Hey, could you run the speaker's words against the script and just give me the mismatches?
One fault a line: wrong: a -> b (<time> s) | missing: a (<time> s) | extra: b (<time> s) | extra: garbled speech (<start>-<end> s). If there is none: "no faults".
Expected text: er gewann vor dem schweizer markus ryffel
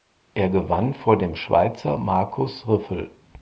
no faults